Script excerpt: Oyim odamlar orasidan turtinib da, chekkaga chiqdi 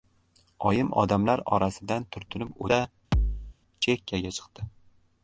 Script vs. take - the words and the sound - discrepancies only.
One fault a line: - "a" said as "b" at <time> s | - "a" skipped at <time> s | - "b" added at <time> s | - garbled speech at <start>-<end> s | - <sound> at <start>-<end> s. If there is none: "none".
- thud at 3.1-3.6 s